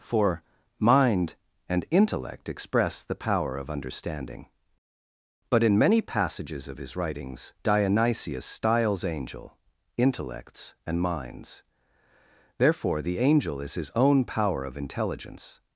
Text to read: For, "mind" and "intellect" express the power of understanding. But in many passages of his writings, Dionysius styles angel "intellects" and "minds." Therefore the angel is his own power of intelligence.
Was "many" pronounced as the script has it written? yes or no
yes